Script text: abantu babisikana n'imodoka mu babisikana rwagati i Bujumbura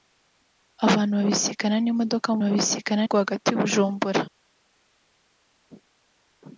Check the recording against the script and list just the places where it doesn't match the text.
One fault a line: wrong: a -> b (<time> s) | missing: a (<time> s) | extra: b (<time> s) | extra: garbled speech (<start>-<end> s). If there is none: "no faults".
no faults